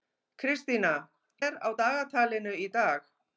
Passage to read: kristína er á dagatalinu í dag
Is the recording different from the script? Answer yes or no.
no